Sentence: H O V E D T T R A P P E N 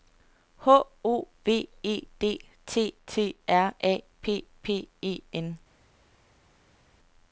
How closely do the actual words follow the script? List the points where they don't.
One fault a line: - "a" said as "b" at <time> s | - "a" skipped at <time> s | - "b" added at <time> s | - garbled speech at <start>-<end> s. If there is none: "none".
none